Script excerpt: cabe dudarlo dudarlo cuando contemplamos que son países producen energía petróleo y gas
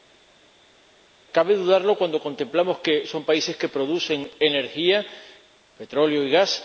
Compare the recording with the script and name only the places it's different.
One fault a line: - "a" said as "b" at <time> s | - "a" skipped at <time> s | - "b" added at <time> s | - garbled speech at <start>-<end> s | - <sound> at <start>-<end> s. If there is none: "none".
- "dudarlo" skipped at 2.0 s
- "que" added at 3.6 s